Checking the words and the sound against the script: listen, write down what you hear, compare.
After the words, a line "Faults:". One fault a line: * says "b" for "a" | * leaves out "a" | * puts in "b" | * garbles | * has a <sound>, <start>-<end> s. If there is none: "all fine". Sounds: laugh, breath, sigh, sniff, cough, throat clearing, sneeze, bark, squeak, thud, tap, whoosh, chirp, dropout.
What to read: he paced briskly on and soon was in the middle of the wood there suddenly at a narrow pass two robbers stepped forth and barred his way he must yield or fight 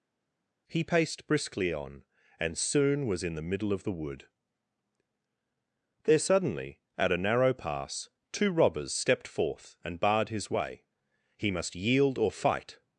he paced briskly on and soon was in the middle of the wood there suddenly at a narrow pass two robbers stepped forth and barred his way he must yield or fight
Faults:
all fine